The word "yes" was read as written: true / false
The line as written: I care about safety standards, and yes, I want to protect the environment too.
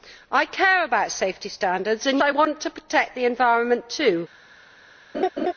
false